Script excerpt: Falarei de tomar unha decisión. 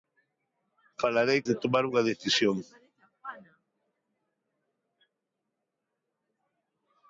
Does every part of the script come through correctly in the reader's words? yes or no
yes